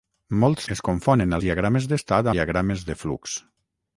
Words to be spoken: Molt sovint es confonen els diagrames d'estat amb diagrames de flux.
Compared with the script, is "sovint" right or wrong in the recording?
wrong